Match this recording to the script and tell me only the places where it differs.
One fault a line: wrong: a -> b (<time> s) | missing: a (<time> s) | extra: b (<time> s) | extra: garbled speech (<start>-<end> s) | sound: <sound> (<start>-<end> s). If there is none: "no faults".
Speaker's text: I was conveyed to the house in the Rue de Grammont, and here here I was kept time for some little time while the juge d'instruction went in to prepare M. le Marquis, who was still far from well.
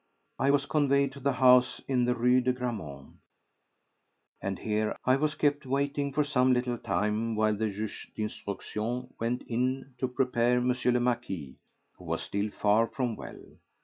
missing: here (4.9 s)
wrong: time -> waiting (5.6 s)